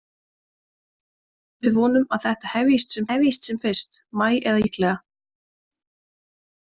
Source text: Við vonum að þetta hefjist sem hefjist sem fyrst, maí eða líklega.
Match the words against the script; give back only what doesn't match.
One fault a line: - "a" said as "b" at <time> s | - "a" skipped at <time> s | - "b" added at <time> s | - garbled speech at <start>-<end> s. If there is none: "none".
none